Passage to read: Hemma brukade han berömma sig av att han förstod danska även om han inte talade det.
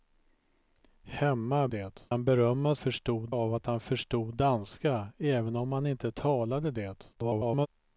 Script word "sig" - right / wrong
wrong